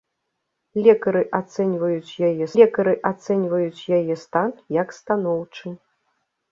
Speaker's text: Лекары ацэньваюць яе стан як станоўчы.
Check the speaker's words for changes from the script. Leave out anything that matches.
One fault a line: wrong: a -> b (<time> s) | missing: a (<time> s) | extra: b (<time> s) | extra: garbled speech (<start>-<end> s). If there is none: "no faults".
extra: лекары ацэньваюць яе (2.6 s)